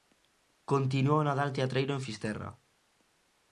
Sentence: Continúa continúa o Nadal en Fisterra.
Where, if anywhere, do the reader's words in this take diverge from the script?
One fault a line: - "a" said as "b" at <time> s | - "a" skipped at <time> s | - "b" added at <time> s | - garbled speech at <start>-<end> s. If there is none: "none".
- "continúa" skipped at 1.2 s
- "teatreiro" added at 1.6 s